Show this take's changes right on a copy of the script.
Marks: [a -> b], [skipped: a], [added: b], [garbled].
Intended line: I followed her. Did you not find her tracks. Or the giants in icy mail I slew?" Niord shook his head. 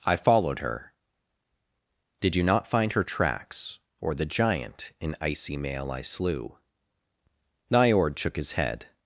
I followed her. Did you not find her tracks. Or the [giants -> giant] in icy mail I slew?" Niord shook his head.